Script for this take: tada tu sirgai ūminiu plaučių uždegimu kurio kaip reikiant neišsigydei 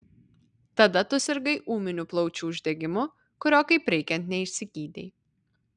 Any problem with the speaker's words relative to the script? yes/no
no